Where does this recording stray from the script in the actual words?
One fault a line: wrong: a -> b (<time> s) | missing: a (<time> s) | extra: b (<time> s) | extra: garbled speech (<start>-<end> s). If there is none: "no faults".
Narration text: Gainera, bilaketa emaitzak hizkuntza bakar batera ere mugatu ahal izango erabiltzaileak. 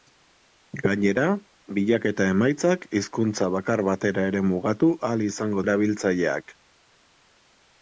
no faults